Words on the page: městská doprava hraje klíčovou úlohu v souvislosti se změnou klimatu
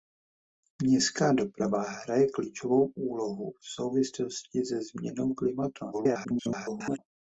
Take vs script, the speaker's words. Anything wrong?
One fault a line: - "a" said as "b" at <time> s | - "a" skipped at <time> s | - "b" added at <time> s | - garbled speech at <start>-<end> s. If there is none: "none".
- garbled speech at 5.9-7.0 s